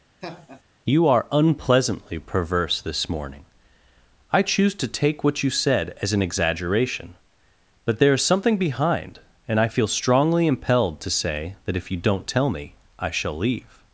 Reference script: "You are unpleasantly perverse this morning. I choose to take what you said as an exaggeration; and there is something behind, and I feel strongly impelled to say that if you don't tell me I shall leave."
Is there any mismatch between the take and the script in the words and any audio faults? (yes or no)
yes